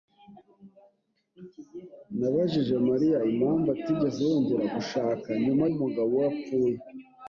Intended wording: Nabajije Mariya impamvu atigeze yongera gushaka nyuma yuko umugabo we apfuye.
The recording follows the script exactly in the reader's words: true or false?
false